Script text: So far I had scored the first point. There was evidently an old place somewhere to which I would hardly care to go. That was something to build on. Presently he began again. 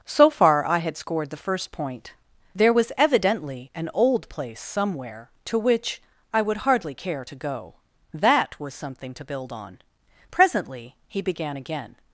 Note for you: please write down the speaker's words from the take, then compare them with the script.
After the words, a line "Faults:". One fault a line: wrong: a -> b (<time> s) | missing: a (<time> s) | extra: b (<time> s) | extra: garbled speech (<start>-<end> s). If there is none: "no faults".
So far I had scored the first point. There was evidently an old place somewhere to which I would hardly care to go. That was something to build on. Presently he began again.
Faults:
no faults